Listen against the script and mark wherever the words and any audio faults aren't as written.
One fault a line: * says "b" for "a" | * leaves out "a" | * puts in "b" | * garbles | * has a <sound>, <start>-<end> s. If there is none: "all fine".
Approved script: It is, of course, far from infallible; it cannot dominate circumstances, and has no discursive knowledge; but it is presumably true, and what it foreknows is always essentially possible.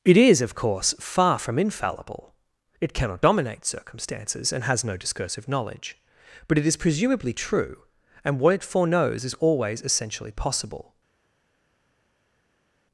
all fine